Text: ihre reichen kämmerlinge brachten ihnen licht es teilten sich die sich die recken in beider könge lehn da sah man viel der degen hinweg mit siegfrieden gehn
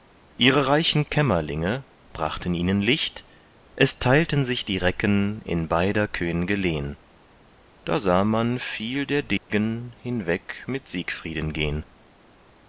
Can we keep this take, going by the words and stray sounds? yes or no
no